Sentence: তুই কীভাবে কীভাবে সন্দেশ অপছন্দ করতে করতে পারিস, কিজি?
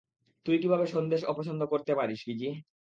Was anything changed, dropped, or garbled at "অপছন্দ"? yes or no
no